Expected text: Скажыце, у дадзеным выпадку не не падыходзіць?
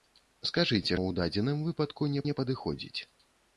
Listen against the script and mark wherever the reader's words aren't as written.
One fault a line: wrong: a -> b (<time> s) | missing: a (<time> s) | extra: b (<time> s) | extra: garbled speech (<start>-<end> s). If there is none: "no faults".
no faults